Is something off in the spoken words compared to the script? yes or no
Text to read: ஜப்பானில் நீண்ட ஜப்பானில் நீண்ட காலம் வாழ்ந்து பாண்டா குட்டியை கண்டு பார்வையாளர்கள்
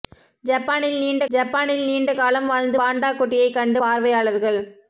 no